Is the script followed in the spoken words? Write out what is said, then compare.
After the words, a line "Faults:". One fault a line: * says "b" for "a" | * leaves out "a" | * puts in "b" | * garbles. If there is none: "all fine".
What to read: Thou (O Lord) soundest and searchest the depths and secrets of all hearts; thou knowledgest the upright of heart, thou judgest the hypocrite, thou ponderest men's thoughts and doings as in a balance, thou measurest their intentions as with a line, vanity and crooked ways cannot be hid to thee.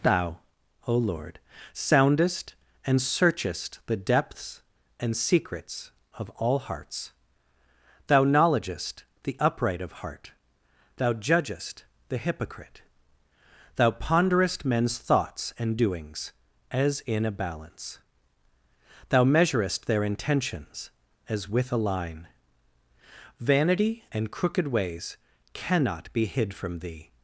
Thou (O Lord) soundest and searchest the depths and secrets of all hearts; thou knowledgest the upright of heart, thou judgest the hypocrite, thou ponderest men's thoughts and doings as in a balance, thou measurest their intentions as with a line, vanity and crooked ways cannot be hid from thee.
Faults:
* says "from" for "to"